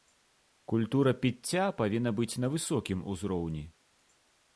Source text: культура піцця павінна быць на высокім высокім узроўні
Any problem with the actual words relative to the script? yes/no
yes